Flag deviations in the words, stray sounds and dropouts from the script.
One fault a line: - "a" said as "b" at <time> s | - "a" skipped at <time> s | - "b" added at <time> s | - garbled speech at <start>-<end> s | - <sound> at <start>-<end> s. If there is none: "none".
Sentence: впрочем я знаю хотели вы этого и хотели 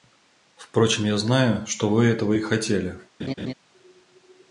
- "хотели" said as "что" at 1.7 s
- laugh at 3.2-3.5 s